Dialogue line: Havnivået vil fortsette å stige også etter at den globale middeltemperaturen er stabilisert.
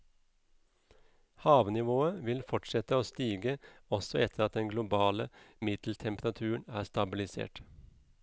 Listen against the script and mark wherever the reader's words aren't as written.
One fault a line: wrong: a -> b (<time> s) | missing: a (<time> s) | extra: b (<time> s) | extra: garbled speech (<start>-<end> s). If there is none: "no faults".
no faults